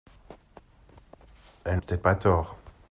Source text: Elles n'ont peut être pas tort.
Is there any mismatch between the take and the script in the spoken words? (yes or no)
yes